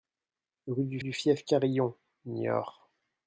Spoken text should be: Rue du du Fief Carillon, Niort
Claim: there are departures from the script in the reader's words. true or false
false